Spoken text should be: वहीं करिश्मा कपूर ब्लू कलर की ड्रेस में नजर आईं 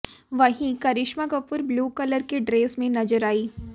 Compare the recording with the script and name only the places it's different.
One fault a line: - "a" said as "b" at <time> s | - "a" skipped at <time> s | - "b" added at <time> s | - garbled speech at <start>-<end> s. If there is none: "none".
none